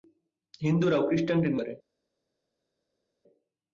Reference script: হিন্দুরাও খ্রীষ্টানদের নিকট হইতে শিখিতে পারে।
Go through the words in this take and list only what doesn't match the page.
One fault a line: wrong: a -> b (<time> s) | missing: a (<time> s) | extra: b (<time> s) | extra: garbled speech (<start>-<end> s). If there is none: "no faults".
missing: নিকট হইতে শিখিতে (1.5 s)